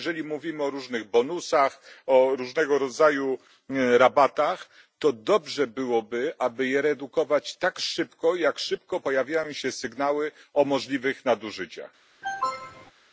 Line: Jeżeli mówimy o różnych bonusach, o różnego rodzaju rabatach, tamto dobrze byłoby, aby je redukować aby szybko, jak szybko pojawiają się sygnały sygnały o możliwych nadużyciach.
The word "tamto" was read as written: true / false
false